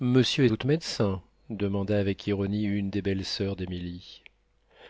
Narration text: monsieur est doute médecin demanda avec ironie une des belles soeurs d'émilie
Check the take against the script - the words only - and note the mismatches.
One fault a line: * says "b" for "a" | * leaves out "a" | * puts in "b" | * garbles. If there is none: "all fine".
all fine